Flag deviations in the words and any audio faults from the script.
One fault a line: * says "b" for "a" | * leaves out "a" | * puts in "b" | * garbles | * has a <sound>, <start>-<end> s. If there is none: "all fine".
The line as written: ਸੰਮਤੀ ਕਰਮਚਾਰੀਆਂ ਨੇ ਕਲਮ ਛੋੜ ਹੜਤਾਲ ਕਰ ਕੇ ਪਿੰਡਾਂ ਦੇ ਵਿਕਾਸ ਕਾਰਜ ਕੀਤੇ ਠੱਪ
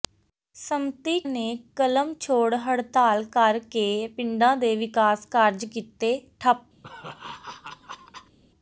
* leaves out "ਕਰਮਚਾਰੀਆਂ"
* has a laugh, 6.8-8.4 s